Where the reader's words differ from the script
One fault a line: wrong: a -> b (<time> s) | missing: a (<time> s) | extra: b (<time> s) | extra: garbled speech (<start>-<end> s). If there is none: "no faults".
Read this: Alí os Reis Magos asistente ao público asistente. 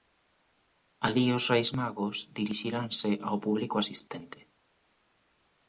wrong: asistente -> dirixiranse (2.4 s)